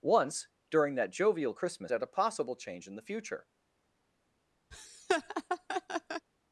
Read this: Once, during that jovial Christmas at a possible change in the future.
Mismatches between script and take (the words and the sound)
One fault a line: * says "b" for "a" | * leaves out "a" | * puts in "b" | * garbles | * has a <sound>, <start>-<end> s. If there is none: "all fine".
* has a laugh, 4.7-6.3 s